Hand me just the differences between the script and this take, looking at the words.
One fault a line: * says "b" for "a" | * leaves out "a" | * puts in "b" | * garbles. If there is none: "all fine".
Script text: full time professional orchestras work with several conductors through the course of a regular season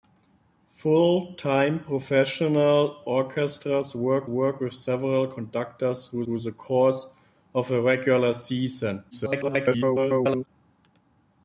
* puts in "work"
* puts in "through"
* garbles